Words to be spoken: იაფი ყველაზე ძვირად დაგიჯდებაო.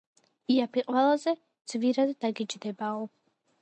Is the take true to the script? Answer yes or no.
yes